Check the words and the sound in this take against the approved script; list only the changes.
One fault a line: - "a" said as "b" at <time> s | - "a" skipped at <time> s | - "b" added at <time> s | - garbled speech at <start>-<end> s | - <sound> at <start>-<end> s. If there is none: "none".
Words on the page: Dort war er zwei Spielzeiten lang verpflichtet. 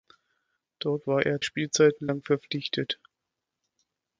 - "zwei" skipped at 1.4 s